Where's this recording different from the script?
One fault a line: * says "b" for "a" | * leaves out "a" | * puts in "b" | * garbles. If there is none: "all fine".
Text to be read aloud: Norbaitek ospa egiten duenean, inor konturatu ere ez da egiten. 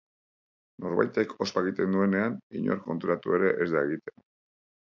all fine